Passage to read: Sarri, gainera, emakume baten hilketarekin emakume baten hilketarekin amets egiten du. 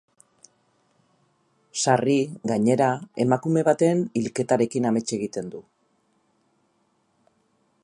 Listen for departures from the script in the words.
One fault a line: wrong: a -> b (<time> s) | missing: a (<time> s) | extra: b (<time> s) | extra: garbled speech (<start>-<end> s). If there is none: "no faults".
missing: emakume baten hilketarekin (4.9 s)